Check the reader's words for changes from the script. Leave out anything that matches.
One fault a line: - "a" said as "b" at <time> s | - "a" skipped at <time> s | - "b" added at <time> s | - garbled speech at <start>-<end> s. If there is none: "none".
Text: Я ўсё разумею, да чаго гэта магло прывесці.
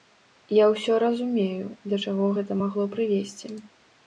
none